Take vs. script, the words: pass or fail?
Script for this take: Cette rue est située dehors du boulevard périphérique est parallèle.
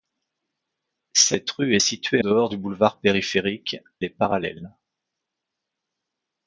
pass